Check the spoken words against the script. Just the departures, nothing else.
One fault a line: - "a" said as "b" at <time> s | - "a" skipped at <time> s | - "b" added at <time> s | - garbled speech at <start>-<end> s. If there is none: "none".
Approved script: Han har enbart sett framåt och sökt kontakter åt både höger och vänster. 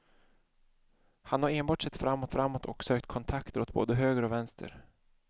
- "framåt" added at 2.3 s